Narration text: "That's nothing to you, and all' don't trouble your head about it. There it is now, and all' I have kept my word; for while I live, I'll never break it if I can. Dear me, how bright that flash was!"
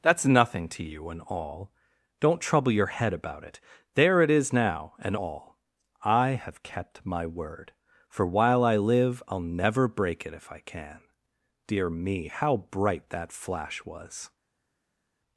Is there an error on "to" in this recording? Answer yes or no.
no